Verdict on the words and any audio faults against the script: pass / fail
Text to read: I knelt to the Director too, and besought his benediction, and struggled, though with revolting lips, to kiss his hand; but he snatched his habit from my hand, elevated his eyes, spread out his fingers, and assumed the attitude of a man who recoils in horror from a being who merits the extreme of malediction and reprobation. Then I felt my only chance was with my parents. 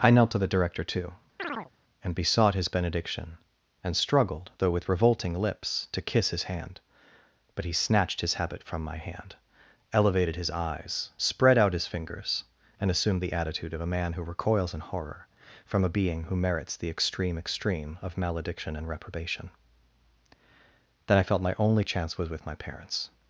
fail